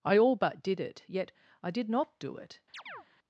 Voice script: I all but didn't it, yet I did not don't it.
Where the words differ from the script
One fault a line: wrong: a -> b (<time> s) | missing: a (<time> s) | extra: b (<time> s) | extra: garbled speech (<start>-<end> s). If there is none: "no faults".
wrong: didn't -> did (0.6 s)
wrong: don't -> do (2.2 s)